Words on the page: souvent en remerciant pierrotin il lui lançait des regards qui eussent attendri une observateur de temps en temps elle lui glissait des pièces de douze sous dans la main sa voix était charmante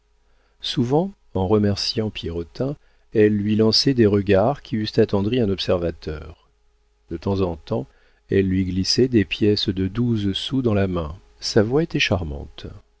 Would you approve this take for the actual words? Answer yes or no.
no